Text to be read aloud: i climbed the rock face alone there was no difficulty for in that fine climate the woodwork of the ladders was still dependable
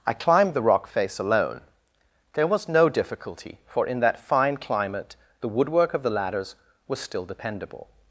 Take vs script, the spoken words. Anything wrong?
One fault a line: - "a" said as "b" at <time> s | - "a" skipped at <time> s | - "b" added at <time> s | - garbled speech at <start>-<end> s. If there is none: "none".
none